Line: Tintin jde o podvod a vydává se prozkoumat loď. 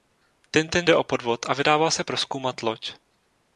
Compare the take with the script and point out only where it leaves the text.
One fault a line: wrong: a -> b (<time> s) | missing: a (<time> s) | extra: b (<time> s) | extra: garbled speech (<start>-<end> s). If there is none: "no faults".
no faults